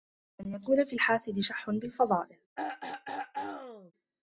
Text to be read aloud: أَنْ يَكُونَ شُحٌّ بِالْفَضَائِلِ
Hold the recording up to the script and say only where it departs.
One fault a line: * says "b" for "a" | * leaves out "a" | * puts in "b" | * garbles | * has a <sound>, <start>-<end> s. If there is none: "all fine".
* puts in "فِي الْحَاسِدِ"
* has a throat clearing, 2.6-3.9 s